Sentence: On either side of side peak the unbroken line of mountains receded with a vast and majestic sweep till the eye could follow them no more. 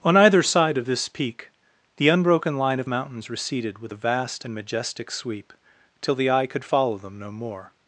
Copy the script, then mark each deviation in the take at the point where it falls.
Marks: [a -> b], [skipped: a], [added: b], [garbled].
On either side of [side -> this] peak the unbroken line of mountains receded with a vast and majestic sweep till the eye could follow them no more.